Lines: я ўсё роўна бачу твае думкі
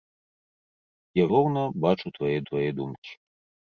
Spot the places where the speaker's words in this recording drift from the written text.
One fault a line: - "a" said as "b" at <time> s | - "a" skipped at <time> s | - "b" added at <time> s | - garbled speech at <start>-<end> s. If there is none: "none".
- "ўсё" skipped at 1.3 s
- "твае" added at 2.5 s